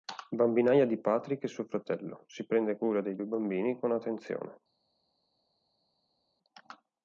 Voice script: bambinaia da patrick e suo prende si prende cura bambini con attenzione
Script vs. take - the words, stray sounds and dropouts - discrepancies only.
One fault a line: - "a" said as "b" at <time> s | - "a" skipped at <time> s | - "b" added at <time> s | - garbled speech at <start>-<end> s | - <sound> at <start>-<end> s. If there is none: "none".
- "da" said as "di" at 0.9 s
- "prende" said as "fratello" at 1.7 s
- "dei due" added at 3.0 s